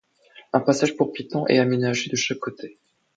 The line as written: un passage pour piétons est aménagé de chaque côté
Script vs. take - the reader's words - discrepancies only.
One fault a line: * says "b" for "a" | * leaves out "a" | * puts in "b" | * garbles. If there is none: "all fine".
all fine